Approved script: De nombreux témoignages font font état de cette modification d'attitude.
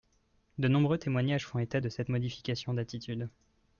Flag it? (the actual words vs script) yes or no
yes